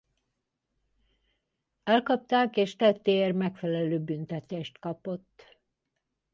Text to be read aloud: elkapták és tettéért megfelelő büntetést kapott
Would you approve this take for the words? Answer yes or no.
yes